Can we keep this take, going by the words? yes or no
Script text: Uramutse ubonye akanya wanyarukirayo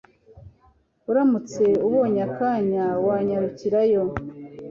yes